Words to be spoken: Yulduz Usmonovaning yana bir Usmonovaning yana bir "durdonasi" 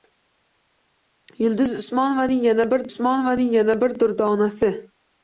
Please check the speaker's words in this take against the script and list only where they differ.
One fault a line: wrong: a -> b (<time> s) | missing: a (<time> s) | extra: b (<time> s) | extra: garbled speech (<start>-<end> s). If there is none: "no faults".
no faults